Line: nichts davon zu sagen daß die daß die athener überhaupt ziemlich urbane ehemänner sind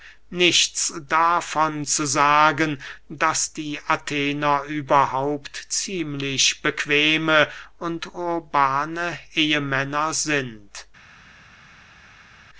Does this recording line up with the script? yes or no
no